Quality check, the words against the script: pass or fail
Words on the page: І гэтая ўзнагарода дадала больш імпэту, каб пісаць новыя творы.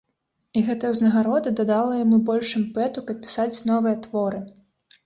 fail